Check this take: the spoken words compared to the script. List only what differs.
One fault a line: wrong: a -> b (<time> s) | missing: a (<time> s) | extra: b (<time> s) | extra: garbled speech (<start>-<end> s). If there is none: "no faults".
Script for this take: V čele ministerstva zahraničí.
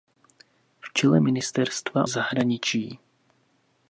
no faults